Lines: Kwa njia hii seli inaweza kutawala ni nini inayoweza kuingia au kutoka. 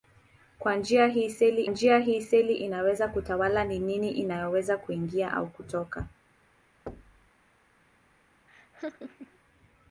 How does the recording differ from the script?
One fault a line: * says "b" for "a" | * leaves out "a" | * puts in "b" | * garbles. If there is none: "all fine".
* puts in "njia hii seli"